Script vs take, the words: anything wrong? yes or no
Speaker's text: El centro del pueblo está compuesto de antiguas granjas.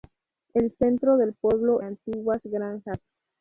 yes